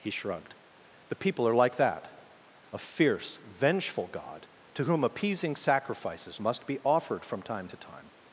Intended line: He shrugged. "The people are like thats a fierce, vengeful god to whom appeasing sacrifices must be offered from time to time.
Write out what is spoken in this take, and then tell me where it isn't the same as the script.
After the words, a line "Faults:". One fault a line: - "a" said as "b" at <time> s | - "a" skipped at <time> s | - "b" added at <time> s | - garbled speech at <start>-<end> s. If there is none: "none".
He shrugged. "The people are like that a fierce, vengeful god to whom appeasing sacrifices must be offered from time to time.
Faults:
- "thats" said as "that" at 1.7 s